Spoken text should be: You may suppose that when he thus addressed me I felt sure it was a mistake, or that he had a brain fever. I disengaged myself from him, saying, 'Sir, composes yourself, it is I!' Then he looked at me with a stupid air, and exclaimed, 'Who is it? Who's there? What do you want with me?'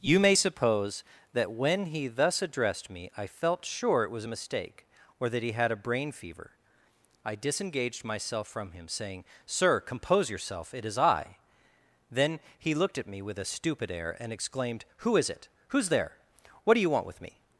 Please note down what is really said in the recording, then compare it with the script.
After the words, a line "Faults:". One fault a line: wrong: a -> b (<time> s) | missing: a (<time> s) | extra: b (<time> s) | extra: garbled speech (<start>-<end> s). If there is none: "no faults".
You may suppose that when he thus addressed me I felt sure it was a mistake, or that he had a brain fever. I disengaged myself from him, saying, 'Sir, compose yourself, it is I!' Then he looked at me with a stupid air, and exclaimed, 'Who is it? Who's there? What do you want with me?'
Faults:
wrong: composes -> compose (9.8 s)